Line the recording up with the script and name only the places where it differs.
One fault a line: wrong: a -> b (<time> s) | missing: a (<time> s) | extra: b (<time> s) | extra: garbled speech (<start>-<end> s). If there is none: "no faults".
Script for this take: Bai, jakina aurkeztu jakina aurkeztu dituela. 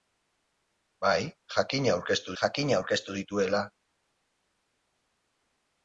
no faults